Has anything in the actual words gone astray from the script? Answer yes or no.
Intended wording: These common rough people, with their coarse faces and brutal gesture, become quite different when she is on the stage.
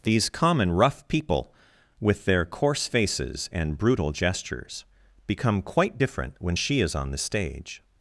yes